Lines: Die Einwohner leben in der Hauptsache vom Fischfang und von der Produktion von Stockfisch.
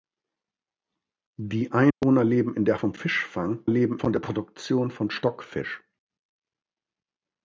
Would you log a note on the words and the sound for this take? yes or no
yes